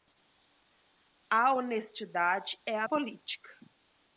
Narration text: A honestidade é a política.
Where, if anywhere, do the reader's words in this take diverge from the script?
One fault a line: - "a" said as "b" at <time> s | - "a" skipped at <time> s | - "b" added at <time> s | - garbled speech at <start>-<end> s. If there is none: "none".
none